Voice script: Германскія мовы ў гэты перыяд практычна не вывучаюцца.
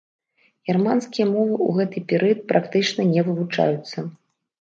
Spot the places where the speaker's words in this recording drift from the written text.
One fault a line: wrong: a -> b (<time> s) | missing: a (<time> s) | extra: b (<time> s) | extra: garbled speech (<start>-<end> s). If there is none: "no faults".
no faults